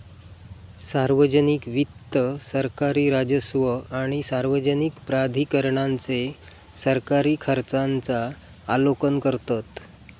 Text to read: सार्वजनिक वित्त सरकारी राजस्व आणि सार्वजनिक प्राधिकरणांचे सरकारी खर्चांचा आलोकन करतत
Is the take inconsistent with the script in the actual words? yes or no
no